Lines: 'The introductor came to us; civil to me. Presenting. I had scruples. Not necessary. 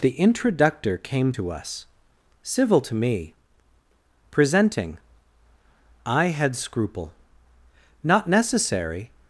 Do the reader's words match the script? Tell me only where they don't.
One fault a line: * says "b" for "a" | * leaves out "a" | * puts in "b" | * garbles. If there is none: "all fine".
* says "scruple" for "scruples"